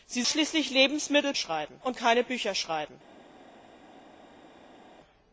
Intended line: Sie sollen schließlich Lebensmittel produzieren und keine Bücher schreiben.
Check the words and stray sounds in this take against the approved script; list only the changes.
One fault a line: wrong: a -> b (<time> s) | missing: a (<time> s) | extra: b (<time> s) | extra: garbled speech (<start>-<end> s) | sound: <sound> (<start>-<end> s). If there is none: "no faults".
missing: sollen (0.2 s)
wrong: produzieren -> schreiben (1.4 s)